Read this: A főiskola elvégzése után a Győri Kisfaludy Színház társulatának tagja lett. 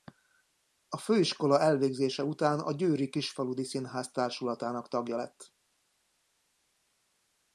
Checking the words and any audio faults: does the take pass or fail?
pass